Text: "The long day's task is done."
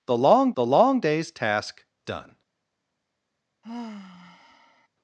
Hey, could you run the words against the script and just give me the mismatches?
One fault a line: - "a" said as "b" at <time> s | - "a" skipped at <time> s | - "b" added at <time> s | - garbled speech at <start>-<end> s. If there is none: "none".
- "the long" added at 0.6 s
- "is" skipped at 1.8 s